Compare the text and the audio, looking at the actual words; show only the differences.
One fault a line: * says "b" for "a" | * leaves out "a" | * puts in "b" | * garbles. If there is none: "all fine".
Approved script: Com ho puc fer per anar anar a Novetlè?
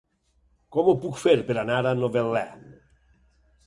* leaves out "anar"